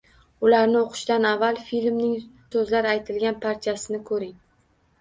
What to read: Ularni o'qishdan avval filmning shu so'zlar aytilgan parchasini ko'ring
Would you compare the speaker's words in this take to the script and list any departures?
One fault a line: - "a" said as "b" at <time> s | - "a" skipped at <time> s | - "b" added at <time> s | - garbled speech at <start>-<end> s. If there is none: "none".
- "shu" skipped at 2.1 s